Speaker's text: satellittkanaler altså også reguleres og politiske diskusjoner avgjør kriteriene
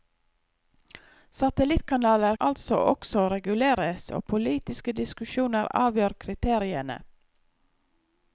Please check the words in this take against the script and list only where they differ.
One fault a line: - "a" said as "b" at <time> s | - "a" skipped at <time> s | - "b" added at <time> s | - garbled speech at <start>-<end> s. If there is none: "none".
none